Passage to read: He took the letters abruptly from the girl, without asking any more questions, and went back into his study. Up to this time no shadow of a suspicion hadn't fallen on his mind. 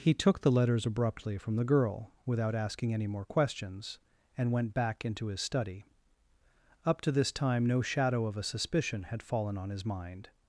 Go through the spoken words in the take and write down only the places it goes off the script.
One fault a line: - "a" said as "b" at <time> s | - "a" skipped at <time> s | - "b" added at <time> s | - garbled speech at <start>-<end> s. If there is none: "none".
- "hadn't" said as "had" at 9.1 s